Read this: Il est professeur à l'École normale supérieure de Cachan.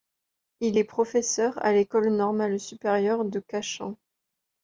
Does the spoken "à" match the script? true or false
true